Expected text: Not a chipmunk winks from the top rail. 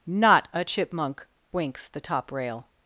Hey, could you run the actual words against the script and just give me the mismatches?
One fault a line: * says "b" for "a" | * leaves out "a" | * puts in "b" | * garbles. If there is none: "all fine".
* leaves out "from"